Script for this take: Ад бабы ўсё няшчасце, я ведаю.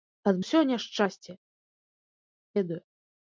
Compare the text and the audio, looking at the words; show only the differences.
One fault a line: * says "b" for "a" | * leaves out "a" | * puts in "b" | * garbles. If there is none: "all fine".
* leaves out "бабы"
* leaves out "я"